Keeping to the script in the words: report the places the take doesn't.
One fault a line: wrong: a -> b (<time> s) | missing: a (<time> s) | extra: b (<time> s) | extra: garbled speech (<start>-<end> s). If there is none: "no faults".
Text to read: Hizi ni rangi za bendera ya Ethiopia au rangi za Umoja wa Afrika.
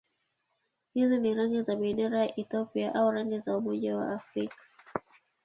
no faults